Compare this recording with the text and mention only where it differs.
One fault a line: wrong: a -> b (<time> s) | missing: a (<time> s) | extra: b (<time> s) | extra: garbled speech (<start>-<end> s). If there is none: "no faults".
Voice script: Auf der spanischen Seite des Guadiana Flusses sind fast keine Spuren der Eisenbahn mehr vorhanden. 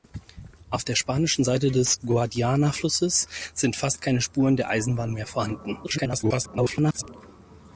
extra: garbled speech (5.8-7.0 s)